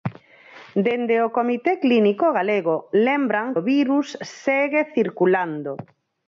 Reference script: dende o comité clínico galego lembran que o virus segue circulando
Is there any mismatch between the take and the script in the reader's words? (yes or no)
yes